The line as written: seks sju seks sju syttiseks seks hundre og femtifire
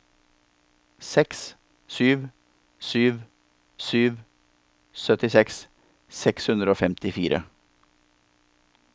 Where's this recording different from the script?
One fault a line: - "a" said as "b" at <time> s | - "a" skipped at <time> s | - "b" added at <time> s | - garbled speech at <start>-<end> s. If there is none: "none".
- "seks" said as "sju" at 2.9 s